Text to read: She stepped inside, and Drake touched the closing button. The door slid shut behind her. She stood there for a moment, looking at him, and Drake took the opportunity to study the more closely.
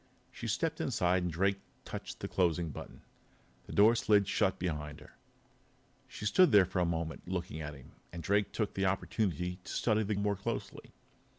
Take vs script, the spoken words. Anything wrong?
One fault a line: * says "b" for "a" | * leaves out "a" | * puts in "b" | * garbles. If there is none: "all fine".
all fine